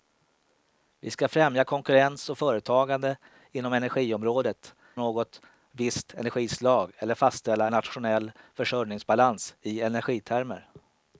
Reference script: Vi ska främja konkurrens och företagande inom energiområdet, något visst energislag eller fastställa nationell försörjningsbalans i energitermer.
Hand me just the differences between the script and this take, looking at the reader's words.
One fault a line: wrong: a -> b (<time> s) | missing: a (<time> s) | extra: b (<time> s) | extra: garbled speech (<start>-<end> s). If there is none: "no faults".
no faults